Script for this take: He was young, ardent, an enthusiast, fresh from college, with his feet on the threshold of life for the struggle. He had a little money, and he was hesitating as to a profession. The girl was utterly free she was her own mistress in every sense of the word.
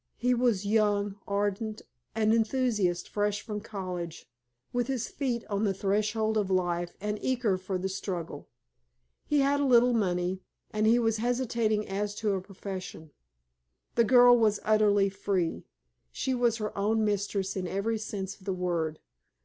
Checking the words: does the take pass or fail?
fail